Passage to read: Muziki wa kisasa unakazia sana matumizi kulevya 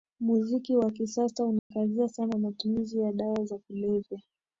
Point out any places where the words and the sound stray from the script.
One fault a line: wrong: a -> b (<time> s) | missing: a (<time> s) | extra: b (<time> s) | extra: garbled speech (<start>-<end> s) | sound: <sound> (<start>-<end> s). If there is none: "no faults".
sound: dropout (1.6-1.7 s)
extra: ya dawa za (3.0 s)